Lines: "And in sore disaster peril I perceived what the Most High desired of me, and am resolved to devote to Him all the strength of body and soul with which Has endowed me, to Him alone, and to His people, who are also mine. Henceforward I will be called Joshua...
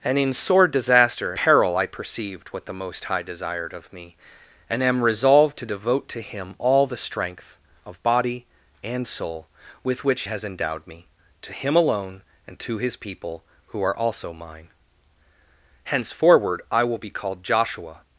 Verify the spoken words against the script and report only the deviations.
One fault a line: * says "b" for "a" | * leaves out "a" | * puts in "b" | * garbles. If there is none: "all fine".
all fine